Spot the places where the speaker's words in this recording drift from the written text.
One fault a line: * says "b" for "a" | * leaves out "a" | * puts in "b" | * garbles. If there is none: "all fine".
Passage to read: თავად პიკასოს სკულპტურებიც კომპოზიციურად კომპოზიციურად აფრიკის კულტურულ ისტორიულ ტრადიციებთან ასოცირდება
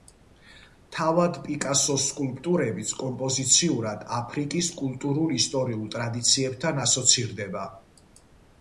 * leaves out "კომპოზიციურად"